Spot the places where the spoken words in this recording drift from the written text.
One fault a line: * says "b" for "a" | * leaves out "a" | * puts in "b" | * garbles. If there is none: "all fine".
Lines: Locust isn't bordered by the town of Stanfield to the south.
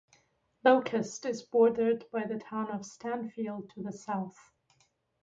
* says "is" for "isn't"